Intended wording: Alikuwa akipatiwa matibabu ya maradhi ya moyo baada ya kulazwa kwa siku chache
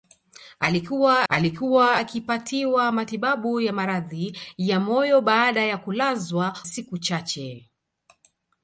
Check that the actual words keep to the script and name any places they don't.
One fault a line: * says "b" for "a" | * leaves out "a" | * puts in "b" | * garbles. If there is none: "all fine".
* puts in "alikuwa"
* leaves out "kwa"